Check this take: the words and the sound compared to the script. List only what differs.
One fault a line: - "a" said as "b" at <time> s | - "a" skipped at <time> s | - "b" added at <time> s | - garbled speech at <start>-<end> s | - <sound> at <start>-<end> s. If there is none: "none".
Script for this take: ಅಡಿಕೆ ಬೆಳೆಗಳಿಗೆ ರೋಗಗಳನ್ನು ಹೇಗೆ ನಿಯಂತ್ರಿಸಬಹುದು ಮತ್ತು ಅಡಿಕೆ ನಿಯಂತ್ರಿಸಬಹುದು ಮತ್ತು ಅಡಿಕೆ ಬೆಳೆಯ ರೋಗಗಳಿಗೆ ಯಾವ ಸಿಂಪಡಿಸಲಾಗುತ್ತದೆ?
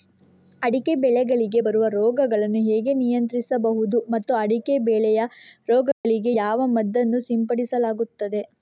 - "ಬರುವ" added at 1.6 s
- "ನಿಯಂತ್ರಿಸಬಹುದು ಮತ್ತು ಅಡಿಕೆ" skipped at 4.8 s
- dropout at 5.9-6.0 s
- "ಮದ್ದನ್ನು" added at 6.8 s